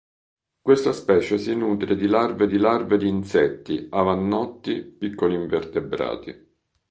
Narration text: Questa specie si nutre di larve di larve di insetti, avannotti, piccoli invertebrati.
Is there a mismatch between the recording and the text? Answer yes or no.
no